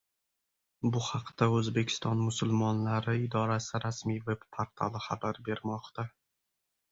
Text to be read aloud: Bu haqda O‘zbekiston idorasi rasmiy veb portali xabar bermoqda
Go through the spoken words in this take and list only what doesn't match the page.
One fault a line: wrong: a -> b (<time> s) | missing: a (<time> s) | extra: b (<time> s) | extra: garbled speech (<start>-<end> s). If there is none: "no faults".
extra: musulmonlari (2.3 s)